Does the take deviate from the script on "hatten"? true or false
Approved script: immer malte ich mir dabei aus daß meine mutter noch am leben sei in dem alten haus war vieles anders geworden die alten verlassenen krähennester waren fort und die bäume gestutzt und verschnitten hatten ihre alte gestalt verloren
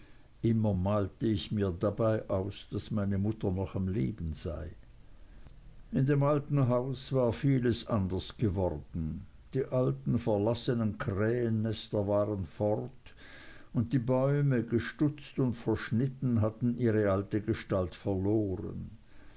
false